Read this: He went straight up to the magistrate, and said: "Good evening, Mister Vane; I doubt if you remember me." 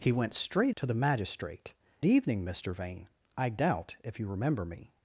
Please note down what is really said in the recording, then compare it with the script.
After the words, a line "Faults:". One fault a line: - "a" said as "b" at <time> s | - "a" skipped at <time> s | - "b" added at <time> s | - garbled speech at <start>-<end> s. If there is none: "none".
He went straight to the magistrate, evening, Mister Vane; I doubt if you remember me."
Faults:
- "up" skipped at 0.8 s
- "and said Good" skipped at 1.7 s